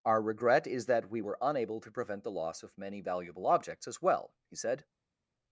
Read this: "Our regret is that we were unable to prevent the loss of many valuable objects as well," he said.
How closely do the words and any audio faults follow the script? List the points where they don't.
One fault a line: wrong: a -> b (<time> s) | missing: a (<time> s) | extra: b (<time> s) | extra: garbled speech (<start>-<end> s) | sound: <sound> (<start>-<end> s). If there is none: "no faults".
no faults